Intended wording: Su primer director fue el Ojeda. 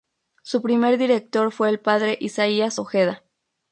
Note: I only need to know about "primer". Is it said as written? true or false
true